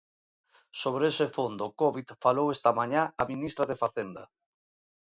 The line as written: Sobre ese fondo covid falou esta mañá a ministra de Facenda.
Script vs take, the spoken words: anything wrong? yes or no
no